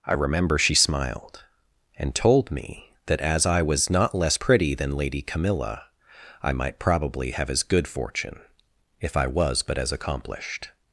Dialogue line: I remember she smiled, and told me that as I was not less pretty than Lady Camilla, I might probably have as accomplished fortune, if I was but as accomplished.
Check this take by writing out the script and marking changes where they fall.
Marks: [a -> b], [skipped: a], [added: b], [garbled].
I remember she smiled, and told me that as I was not less pretty than Lady Camilla, I might probably have as [accomplished -> good] fortune, if I was but as accomplished.